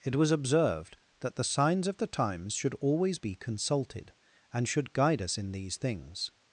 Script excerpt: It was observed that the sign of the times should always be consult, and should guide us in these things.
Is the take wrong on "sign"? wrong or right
wrong